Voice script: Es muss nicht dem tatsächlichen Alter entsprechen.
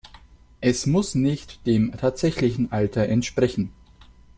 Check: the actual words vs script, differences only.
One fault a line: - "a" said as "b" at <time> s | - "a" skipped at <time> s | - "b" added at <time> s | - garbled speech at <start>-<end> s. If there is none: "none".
none